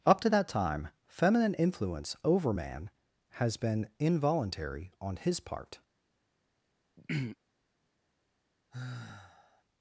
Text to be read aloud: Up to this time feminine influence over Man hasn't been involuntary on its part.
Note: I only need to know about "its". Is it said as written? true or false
false